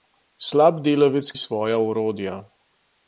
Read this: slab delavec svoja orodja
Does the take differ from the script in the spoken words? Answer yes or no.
no